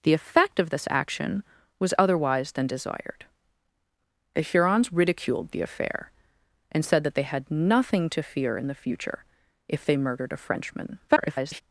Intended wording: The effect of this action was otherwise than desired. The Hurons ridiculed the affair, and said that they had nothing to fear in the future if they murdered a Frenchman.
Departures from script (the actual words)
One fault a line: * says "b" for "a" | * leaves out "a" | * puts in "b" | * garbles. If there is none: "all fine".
* garbles